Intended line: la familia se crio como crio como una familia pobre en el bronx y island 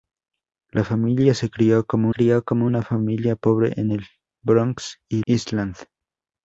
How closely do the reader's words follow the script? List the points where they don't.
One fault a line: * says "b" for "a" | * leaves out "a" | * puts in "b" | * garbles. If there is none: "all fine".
all fine